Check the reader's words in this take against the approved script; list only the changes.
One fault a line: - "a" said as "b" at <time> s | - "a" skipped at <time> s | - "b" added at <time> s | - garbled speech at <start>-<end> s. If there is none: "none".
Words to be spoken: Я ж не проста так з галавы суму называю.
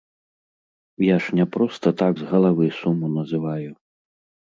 none